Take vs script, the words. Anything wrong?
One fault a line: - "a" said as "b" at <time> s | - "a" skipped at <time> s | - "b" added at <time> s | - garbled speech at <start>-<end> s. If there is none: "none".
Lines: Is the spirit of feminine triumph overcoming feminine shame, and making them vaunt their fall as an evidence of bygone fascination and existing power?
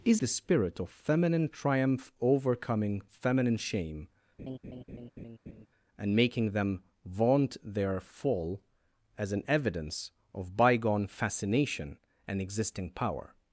none